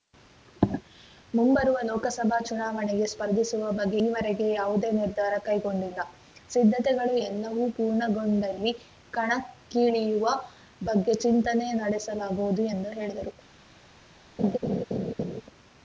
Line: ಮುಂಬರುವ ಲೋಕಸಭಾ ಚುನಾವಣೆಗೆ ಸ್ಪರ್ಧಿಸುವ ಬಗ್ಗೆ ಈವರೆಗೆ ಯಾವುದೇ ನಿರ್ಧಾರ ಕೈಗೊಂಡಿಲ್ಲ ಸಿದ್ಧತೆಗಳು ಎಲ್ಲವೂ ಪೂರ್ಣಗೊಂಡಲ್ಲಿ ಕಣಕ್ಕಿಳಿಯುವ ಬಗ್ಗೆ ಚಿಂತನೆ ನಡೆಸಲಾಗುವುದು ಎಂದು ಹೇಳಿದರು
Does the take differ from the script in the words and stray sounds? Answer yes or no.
yes